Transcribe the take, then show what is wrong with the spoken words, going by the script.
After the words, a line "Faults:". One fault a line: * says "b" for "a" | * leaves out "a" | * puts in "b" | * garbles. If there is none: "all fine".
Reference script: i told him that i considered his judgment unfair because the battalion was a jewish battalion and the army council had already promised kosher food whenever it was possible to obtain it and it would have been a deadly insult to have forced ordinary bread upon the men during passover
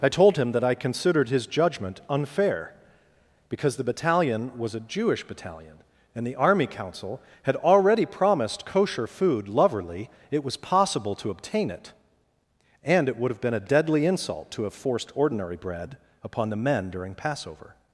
i told him that i considered his judgment unfair because the battalion was a jewish battalion and the army council had already promised kosher food loverly it was possible to obtain it and it would have been a deadly insult to have forced ordinary bread upon the men during passover
Faults:
* says "loverly" for "whenever"